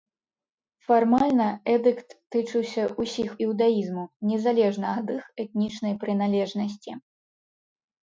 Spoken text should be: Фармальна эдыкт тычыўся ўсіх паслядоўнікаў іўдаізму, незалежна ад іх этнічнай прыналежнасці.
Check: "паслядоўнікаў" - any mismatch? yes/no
yes